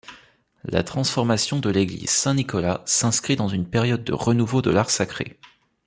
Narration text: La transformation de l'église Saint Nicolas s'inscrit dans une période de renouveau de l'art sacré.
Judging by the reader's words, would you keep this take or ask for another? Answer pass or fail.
pass